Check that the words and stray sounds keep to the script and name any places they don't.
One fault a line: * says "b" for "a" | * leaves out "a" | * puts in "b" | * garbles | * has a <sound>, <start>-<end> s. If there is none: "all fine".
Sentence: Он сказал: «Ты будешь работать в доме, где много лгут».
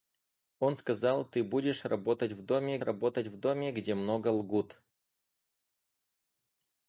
* puts in "работать в доме"